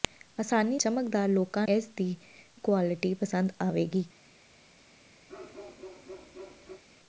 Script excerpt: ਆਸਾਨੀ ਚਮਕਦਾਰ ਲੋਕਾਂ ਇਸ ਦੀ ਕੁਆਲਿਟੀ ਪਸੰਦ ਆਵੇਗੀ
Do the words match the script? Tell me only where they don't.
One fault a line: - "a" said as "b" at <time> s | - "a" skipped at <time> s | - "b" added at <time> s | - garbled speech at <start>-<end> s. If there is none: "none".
none